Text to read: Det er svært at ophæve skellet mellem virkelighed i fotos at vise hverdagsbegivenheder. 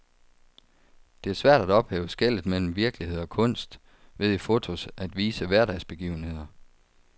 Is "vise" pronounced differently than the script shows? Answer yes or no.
no